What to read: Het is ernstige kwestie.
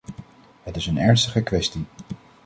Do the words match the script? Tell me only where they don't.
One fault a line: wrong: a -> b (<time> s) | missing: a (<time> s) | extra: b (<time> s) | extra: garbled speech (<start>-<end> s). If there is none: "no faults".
extra: een (0.9 s)